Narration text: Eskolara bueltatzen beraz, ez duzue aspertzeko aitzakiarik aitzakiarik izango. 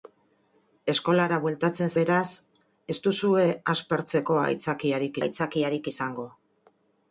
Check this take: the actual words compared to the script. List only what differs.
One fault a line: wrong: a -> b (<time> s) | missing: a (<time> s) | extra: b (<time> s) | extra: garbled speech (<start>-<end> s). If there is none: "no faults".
no faults